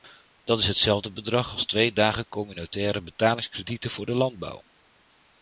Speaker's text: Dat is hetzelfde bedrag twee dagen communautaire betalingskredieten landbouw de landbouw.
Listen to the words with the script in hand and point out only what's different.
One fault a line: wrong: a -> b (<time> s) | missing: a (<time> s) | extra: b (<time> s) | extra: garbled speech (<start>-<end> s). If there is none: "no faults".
extra: als (1.5 s)
wrong: landbouw -> voor (3.9 s)